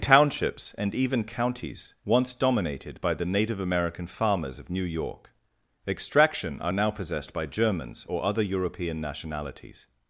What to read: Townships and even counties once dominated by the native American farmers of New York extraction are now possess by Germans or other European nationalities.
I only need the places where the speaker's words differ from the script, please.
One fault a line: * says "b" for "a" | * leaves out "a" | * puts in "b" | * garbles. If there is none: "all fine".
* says "possessed" for "possess"